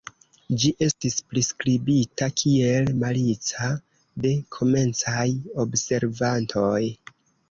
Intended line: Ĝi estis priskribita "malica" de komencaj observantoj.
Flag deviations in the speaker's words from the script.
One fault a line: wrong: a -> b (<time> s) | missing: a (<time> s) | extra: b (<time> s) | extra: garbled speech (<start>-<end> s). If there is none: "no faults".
extra: kiel (2.4 s)